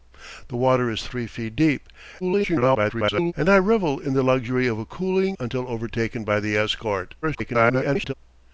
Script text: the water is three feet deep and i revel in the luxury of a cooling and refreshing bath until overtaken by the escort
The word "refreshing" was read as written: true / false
false